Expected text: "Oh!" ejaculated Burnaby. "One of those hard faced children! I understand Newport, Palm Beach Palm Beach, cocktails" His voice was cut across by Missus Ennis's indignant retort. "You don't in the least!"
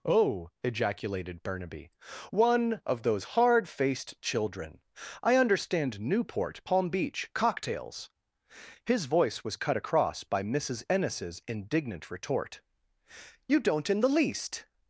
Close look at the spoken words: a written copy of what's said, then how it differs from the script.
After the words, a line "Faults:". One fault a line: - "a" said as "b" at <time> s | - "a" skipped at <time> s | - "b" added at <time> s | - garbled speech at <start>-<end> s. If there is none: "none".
"Oh!" ejaculated Burnaby. "One of those hard faced children! I understand Newport, Palm Beach, cocktails" His voice was cut across by Missus Ennis's indignant retort. "You don't in the least!"
Faults:
- "Palm Beach" skipped at 7.3 s